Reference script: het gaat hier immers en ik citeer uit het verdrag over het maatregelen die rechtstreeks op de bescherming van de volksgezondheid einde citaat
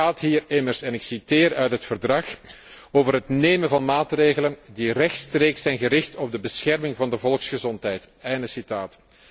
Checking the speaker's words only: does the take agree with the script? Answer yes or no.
no